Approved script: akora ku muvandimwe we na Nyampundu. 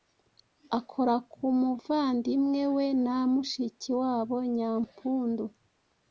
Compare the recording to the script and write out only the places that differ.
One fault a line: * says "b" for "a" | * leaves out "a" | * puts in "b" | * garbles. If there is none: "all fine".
* puts in "mushiki wabo"